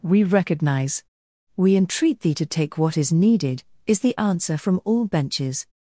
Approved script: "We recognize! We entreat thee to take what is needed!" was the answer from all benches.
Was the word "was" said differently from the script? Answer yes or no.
yes